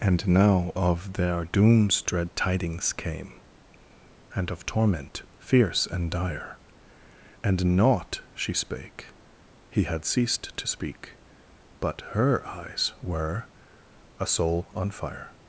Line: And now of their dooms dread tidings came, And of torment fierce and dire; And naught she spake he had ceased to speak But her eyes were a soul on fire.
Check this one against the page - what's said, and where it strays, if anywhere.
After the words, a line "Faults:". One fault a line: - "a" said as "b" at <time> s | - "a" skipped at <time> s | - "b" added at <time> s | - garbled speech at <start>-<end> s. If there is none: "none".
And now of their dooms dread tidings came, And of torment fierce and dire; And naught she spake he had ceased to speak But her eyes were a soul on fire.
Faults:
none